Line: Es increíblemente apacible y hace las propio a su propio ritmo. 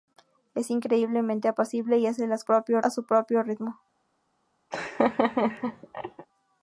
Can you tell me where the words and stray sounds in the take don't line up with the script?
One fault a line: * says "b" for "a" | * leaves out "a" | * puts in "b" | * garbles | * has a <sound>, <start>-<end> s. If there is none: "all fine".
* has a laugh, 4.7-6.3 s